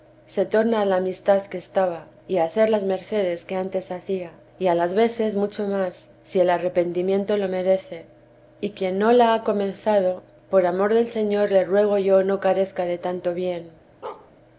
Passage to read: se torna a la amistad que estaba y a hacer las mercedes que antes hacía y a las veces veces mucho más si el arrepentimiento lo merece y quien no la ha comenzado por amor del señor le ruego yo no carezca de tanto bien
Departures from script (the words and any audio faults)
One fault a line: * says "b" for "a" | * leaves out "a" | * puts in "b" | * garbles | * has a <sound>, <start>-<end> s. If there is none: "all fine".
* leaves out "veces"
* has a bark, 14.0-14.3 s